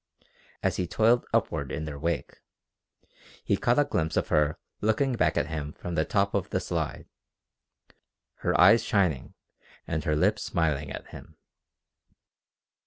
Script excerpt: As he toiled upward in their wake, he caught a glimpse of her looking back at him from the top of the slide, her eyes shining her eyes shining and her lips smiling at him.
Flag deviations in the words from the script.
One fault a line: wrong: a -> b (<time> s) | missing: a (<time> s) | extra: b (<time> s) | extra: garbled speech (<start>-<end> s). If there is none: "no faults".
missing: her eyes shining (9.3 s)